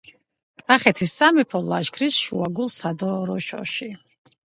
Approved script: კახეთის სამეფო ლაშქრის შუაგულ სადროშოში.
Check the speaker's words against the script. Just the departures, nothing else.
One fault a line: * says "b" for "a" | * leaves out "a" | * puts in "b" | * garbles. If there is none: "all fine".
all fine